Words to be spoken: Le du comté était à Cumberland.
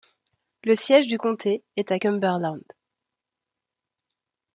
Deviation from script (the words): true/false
true